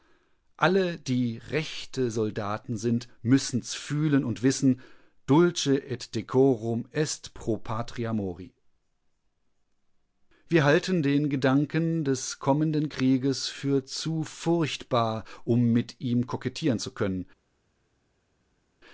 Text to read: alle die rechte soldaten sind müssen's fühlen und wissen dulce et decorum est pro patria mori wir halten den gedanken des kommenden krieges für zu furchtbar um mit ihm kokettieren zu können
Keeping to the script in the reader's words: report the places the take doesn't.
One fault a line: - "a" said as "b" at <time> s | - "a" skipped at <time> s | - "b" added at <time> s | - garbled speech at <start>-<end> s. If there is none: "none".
none